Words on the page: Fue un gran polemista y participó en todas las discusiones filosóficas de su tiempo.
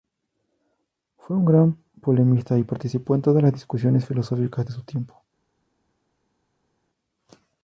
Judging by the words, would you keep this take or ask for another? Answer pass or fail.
pass